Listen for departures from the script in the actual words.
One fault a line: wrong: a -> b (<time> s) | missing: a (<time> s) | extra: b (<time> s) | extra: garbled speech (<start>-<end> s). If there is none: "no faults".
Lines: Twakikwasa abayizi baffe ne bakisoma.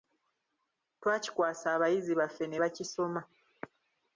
no faults